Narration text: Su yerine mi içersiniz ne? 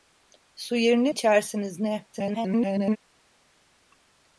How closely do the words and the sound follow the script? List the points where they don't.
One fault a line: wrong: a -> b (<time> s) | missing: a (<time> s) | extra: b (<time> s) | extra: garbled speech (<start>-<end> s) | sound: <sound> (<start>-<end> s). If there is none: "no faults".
missing: mi (1.1 s)
extra: garbled speech (2.1-3.0 s)